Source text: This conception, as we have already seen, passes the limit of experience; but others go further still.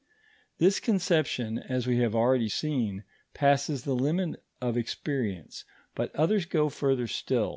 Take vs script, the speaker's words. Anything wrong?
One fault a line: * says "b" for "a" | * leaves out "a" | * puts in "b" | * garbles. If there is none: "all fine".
all fine